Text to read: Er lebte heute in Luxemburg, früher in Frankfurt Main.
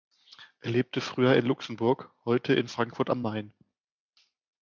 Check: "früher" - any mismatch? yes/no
yes